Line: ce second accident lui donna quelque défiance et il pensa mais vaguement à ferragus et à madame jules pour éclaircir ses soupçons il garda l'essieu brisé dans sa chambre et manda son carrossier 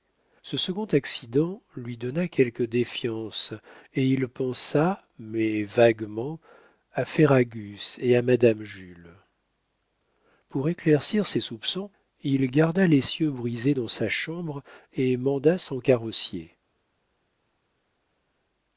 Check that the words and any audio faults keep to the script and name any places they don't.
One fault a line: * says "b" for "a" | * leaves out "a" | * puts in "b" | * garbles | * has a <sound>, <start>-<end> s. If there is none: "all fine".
all fine